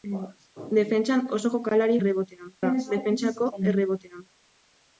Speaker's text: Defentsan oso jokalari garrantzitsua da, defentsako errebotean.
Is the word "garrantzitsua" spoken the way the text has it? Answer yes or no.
no